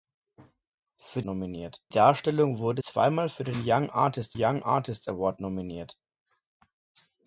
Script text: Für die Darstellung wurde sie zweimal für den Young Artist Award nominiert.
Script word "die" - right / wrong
wrong